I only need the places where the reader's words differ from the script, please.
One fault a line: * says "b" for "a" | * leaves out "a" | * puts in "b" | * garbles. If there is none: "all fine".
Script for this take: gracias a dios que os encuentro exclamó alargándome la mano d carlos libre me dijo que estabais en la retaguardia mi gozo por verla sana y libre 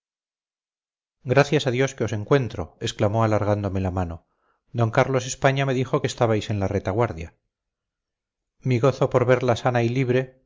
* says "españa" for "libre"